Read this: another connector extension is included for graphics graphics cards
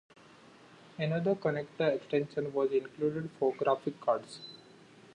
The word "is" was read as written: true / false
false